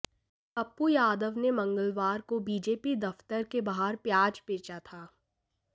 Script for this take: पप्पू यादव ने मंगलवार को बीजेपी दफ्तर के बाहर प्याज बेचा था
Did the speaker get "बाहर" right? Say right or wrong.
right